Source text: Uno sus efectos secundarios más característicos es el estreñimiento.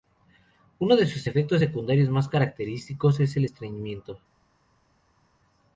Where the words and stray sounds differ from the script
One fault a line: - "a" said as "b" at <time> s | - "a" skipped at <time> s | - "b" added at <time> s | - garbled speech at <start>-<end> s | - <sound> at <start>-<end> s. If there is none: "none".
- "de" added at 0.9 s